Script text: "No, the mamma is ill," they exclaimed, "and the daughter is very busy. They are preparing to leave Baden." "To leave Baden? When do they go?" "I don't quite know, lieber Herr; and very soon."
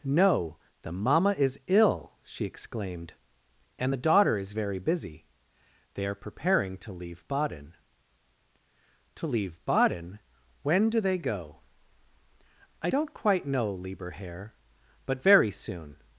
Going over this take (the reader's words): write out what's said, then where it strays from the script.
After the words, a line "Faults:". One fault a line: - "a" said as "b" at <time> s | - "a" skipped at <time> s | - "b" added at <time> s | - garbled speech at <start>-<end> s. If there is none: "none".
"No, the mamma is ill," she exclaimed, "and the daughter is very busy. They are preparing to leave Baden." "To leave Baden? When do they go?" "I don't quite know, lieber Herr; but very soon."
Faults:
- "they" said as "she" at 2.2 s
- "and" said as "but" at 15.0 s